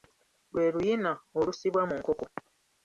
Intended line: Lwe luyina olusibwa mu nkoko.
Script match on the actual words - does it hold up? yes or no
yes